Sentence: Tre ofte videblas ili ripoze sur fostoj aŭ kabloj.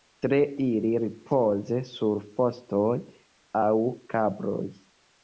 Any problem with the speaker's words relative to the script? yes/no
yes